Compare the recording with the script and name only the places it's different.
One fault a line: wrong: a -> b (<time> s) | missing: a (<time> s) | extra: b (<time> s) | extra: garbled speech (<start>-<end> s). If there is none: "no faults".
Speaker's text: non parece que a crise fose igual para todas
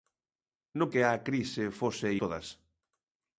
missing: parece (0.9 s)
missing: igual para (2.1 s)